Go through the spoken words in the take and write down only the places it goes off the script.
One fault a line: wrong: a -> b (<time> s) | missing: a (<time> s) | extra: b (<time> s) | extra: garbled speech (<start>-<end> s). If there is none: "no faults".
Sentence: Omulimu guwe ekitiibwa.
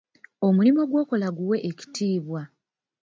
extra: gw'okola (0.9 s)